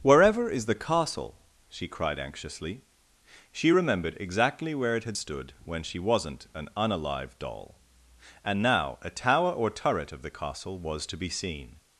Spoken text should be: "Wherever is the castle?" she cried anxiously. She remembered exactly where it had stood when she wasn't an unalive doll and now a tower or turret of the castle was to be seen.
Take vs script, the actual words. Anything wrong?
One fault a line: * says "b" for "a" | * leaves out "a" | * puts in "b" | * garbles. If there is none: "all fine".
all fine